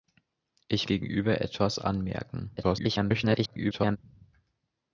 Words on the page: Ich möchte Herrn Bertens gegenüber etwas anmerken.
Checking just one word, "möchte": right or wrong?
wrong